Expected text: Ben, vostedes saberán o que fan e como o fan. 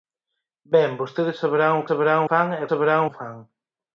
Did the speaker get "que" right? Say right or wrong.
wrong